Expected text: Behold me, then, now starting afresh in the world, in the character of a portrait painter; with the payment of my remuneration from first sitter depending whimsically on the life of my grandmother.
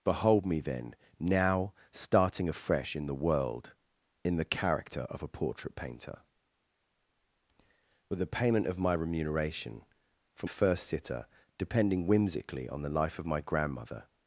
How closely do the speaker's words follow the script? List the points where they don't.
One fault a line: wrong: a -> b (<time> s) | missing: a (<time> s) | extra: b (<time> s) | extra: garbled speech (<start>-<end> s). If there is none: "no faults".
no faults